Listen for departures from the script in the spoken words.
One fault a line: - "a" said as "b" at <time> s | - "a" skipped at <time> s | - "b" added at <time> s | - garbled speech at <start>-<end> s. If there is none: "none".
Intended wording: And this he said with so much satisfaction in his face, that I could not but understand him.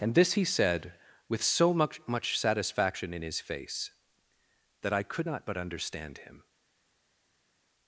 - "much" added at 2.1 s